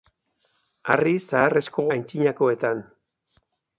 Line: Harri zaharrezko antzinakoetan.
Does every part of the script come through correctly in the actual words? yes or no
yes